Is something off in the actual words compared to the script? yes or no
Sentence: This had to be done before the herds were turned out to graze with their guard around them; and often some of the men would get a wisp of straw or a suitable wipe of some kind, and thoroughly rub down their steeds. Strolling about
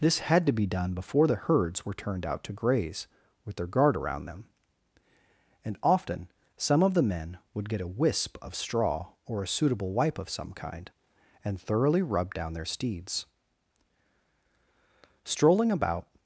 no